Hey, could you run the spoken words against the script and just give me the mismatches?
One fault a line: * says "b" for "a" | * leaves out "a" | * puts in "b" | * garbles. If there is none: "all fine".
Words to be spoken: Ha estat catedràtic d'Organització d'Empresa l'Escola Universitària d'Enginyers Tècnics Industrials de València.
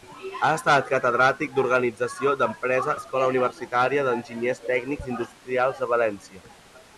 all fine